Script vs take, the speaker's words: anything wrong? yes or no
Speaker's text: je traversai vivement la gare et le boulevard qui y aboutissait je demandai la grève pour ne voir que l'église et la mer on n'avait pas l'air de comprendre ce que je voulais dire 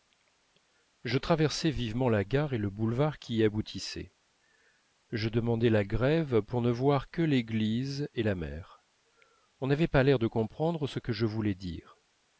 no